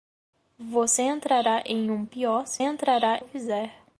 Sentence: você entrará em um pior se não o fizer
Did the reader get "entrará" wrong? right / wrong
right